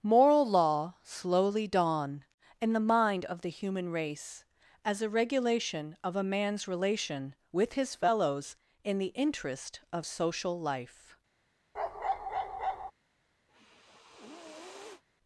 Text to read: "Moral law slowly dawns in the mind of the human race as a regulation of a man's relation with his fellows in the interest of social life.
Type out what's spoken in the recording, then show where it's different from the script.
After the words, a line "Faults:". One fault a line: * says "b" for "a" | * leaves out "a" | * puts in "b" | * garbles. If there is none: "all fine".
"Moral law slowly dawn in the mind of the human race as a regulation of a man's relation with his fellows in the interest of social life.
Faults:
* says "dawn" for "dawns"